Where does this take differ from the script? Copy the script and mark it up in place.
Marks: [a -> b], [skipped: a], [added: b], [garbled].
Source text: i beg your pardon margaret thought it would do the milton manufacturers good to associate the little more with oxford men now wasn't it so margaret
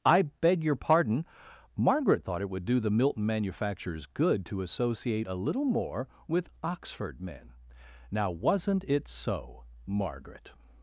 i beg your pardon margaret thought it would do the milton manufacturers good to associate [the -> a] little more with oxford men now wasn't it so margaret